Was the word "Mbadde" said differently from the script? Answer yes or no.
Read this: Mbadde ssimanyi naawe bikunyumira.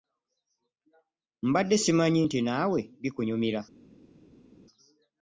no